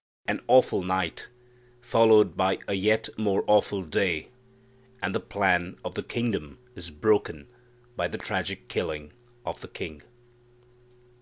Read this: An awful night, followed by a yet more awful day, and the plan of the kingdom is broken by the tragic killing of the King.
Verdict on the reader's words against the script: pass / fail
pass